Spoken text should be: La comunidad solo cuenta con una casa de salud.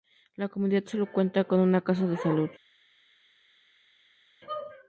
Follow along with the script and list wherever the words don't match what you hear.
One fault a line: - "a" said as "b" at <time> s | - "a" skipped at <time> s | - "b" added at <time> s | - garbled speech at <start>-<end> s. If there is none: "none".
none